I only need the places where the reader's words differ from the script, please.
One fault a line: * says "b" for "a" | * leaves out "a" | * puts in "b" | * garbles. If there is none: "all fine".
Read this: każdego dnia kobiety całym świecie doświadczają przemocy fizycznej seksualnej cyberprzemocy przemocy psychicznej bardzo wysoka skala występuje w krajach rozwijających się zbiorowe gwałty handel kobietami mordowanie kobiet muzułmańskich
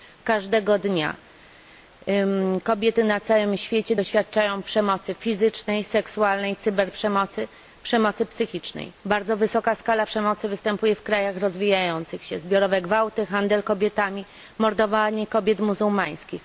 * puts in "na"
* puts in "przemocy"